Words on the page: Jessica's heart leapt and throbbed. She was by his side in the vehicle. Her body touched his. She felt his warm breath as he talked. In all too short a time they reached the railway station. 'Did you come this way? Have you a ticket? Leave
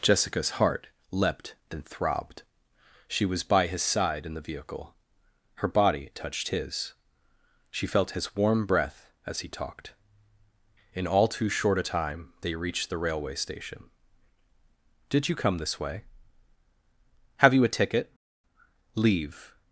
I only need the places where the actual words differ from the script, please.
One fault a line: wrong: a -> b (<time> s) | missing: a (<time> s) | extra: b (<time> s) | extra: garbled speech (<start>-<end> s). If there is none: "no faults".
no faults